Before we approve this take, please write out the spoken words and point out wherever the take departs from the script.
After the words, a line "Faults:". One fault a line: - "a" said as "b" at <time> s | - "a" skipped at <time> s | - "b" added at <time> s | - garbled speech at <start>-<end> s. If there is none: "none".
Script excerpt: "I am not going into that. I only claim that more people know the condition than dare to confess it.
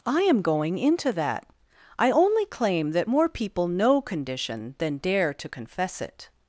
"I am going into that. I only claim that more people know condition than dare to confess it.
Faults:
- "not" skipped at 0.4 s
- "the" skipped at 4.0 s